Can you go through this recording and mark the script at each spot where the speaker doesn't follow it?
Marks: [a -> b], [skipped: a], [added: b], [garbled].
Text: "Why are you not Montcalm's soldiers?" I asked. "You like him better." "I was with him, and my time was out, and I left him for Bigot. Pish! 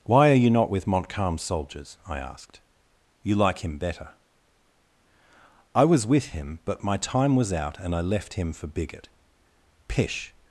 "Why are you not [added: with] Montcalm's soldiers?" I asked. "You like him better." "I was with him, [and -> but] my time was out, and I left him for Bigot. Pish!